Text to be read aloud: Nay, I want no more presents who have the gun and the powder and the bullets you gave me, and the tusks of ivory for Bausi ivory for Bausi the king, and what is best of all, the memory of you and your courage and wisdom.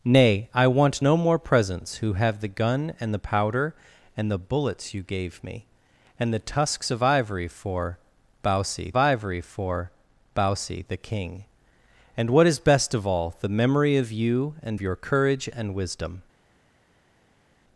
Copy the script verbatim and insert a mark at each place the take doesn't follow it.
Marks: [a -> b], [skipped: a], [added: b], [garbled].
Nay, I want no more presents who have the gun and the powder and the bullets you gave me, and the tusks of ivory for Bausi ivory for Bausi the king, and what is best of all, the memory of you and your courage and wisdom.